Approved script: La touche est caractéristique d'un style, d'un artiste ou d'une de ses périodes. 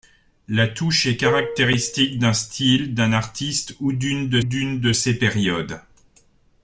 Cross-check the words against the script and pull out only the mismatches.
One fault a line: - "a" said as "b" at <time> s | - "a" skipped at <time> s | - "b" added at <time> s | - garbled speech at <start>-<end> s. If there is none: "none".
- "d'une de" added at 4.4 s